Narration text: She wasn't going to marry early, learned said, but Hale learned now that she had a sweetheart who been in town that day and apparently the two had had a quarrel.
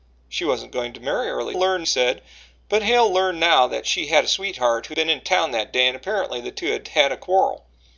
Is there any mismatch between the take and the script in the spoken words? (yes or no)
no